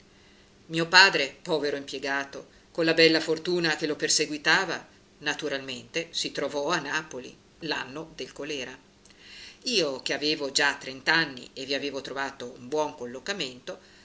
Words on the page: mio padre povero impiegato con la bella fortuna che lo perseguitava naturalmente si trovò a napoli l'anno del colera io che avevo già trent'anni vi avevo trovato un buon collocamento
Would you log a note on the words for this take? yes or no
yes